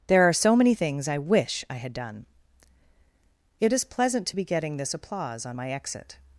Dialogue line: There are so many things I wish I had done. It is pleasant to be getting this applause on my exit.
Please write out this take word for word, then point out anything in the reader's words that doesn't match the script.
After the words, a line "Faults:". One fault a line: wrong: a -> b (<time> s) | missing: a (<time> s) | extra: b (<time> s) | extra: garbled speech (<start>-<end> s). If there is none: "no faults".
There are so many things I wish I had done. It is pleasant to be getting this applause on my exit.
Faults:
no faults